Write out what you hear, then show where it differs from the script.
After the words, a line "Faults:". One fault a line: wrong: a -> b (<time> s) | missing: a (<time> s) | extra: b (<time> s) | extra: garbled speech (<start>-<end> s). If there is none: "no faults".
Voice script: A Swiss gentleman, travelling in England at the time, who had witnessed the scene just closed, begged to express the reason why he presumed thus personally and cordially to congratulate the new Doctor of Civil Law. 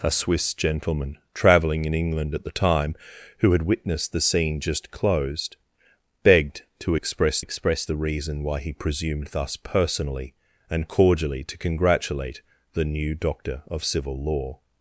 A Swiss gentleman, travelling in England at the time, who had witnessed the scene just closed, begged to express express the reason why he presumed thus personally and cordially to congratulate the new Doctor of Civil Law.
Faults:
extra: express (7.4 s)